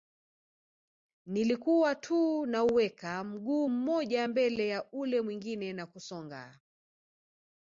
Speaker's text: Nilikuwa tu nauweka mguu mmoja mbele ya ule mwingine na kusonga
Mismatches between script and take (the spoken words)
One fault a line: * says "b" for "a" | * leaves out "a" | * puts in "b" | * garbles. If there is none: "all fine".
all fine